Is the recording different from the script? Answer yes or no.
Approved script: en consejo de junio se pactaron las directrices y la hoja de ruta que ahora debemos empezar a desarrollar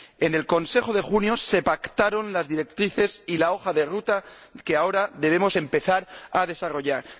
yes